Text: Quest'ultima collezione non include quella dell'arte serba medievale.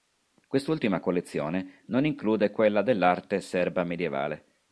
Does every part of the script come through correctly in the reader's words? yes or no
yes